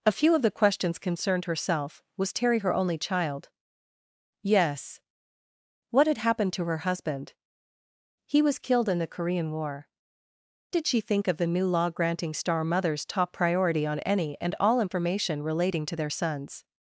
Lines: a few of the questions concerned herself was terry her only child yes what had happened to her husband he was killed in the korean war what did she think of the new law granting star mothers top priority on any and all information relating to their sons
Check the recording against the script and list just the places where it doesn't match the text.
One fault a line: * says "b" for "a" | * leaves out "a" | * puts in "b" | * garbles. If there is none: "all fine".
* leaves out "what"